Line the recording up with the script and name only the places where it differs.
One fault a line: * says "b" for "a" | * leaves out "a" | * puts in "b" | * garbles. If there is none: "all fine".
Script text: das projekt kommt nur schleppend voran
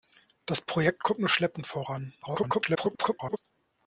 * garbles